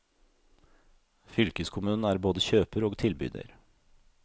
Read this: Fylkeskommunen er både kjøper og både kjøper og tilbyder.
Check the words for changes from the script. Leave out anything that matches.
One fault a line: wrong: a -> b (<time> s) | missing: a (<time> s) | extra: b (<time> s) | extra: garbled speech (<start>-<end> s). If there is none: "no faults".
missing: både kjøper og (3.0 s)